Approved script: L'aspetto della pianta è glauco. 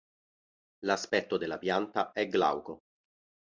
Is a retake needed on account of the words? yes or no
no